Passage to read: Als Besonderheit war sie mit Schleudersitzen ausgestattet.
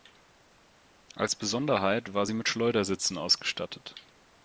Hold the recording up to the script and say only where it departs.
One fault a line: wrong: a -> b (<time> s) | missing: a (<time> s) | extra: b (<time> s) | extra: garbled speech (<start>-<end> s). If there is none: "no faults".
no faults